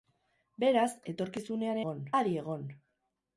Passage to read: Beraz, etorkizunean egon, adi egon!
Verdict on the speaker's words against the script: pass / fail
pass